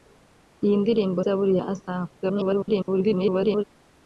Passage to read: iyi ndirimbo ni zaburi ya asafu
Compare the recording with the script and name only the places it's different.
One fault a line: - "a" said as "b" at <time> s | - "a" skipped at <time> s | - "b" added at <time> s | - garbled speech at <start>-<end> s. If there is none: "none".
- "ni" skipped at 1.2 s
- garbled speech at 2.2-3.6 s